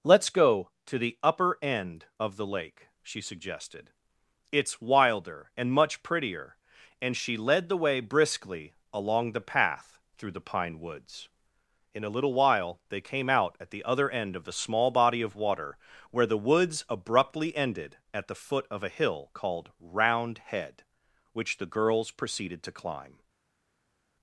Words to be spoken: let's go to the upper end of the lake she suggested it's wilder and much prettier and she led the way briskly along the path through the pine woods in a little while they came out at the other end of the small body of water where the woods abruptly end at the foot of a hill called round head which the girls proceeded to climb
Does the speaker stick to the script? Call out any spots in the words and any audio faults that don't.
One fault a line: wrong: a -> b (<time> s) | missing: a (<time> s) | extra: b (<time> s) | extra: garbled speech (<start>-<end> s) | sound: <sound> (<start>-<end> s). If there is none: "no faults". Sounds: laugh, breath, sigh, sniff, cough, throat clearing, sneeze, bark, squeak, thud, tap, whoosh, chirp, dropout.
wrong: end -> ended (17.6 s)